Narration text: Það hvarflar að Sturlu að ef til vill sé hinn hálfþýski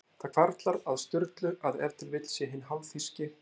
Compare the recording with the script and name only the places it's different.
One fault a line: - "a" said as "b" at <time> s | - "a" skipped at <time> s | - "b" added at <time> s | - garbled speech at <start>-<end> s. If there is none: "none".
none